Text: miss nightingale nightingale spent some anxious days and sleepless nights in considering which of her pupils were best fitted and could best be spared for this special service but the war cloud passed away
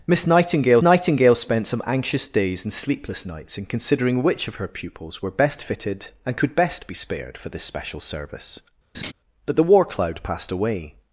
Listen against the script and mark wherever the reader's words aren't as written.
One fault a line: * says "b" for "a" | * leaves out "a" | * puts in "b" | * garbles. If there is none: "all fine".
all fine